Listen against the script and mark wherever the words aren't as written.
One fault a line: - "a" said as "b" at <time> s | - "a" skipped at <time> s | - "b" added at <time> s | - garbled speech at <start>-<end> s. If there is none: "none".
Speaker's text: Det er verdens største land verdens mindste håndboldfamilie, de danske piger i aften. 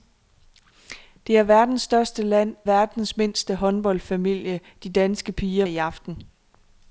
none